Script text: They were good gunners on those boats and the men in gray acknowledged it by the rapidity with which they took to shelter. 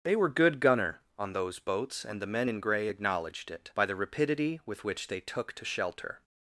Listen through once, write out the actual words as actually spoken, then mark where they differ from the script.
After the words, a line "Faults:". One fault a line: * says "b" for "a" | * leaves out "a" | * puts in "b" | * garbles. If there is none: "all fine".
They were good gunner on those boats and the men in gray acknowledged it by the rapidity with which they took to shelter.
Faults:
* says "gunner" for "gunners"